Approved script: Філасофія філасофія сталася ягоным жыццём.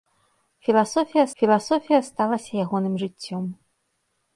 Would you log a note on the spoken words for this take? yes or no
no